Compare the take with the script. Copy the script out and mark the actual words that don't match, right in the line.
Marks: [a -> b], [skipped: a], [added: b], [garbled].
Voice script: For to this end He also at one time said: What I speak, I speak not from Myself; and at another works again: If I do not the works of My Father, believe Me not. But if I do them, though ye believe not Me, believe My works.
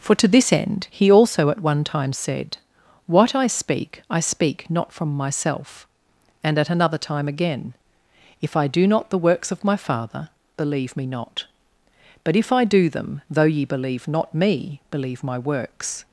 For to this end He also at one time said: What I speak, I speak not from Myself; and at another [works -> time] again: If I do not the works of My Father, believe Me not. But if I do them, though ye believe not Me, believe My works.